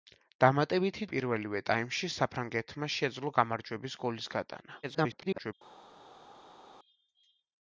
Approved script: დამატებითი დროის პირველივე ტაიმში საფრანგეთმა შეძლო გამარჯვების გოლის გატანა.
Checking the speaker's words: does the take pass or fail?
fail